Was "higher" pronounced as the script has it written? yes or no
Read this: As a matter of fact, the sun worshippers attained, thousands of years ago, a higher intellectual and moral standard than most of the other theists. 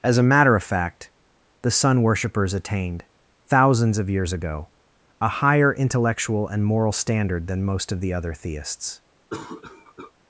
yes